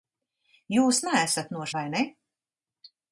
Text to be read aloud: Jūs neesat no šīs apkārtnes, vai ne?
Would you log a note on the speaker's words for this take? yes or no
yes